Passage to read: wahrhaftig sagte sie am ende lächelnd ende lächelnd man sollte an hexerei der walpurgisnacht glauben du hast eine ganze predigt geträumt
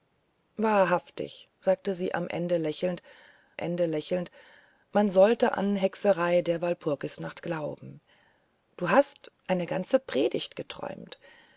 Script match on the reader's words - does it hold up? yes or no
yes